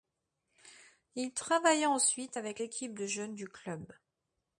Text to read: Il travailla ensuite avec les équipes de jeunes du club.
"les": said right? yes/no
no